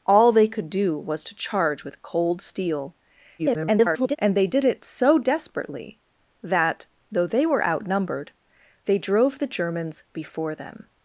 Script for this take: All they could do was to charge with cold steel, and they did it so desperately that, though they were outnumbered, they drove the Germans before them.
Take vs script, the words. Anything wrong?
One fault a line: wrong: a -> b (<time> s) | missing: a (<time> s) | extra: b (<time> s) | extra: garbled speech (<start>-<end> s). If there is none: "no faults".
extra: garbled speech (3.4-4.2 s)